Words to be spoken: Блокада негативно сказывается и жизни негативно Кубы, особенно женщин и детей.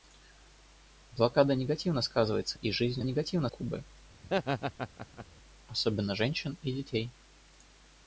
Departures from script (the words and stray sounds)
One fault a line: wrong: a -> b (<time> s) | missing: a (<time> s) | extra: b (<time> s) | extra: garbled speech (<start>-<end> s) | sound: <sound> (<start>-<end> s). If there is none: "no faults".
sound: laugh (4.2-5.3 s)